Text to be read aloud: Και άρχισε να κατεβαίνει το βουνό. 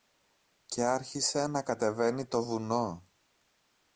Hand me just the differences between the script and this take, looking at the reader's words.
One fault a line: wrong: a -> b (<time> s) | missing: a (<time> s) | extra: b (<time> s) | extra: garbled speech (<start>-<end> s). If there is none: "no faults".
no faults